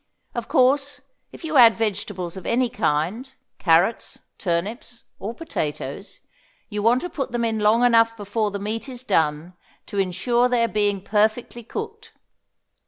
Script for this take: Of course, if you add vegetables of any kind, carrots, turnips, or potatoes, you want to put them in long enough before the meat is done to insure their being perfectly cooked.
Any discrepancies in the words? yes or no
no